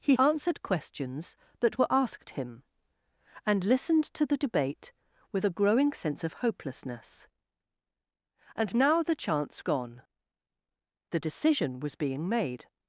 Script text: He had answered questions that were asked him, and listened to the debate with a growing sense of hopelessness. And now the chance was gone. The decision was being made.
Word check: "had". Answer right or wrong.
wrong